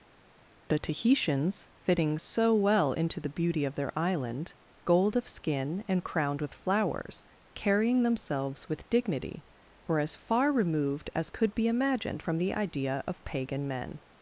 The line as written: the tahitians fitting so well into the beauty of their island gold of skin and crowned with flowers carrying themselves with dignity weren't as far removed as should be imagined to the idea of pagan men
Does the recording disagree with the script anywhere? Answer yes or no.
yes